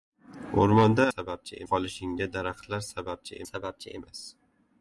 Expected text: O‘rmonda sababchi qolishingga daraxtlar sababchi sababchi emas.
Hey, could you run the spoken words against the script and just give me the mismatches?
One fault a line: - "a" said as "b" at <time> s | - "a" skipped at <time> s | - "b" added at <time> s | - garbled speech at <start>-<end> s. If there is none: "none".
none